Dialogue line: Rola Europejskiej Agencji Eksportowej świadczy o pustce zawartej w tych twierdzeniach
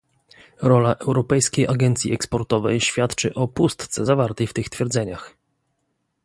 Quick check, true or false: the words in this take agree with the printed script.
true